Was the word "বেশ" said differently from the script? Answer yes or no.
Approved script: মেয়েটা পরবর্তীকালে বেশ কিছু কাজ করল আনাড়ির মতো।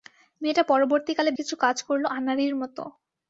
yes